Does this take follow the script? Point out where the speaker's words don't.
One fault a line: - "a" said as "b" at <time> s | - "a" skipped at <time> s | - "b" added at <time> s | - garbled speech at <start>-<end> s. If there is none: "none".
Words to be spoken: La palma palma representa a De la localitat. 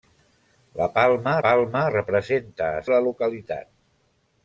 none